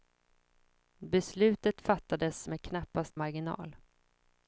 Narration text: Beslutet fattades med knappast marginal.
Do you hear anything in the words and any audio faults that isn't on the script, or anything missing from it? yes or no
no